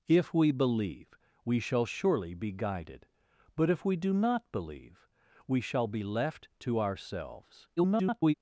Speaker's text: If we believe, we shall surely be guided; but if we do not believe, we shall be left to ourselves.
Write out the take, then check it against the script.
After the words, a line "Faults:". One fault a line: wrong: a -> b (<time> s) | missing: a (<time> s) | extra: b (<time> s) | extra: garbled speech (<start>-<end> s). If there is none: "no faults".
If we believe, we shall surely be guided; but if we do not believe, we shall be left to ourselves. [garbled]
Faults:
extra: garbled speech (7.8-8.3 s)